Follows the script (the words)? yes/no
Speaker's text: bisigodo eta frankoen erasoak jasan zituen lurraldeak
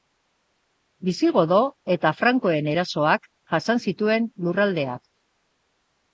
yes